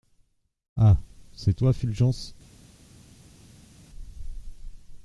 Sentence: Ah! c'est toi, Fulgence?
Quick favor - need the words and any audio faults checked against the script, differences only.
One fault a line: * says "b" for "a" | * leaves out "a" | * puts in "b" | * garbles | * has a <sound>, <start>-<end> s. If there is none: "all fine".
all fine